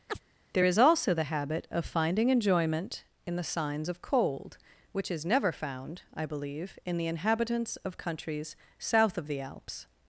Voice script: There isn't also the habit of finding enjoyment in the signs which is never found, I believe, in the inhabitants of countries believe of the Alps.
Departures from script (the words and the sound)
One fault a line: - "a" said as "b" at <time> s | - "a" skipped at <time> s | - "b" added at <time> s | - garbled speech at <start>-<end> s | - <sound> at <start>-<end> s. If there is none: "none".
- chirp at 0.1-0.2 s
- "isn't" said as "is" at 0.6 s
- "of cold" added at 3.9 s
- "believe" said as "south" at 8.8 s